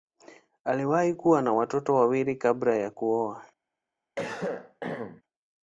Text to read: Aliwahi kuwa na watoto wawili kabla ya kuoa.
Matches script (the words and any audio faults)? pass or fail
fail